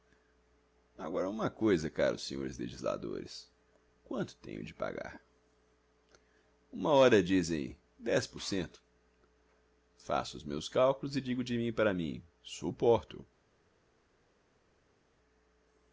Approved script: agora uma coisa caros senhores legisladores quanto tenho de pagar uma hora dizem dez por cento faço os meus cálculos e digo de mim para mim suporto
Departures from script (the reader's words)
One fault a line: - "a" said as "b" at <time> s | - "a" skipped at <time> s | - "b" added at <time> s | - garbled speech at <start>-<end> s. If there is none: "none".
none